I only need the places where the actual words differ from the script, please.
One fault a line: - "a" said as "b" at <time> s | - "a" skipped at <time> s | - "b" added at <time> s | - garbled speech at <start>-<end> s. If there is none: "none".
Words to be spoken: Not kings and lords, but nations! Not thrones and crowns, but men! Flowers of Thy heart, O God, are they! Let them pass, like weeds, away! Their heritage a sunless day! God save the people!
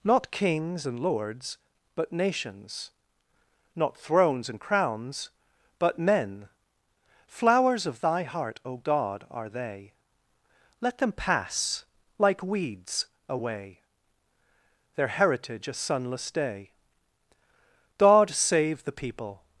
none